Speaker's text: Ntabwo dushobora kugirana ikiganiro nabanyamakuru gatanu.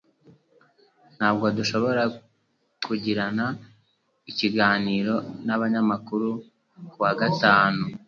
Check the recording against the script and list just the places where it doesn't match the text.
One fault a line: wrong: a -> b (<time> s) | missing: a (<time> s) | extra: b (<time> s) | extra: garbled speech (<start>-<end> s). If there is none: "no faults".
extra: kuwa (6.9 s)